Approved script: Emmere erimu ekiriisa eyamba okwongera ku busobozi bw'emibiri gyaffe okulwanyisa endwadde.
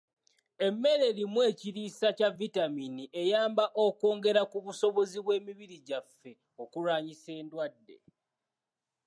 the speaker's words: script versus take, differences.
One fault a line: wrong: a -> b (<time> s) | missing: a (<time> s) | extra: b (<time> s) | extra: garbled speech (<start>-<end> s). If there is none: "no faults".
extra: kya vitamiini (2.2 s)